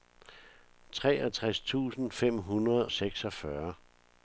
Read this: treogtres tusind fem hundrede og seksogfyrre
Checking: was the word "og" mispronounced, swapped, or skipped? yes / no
yes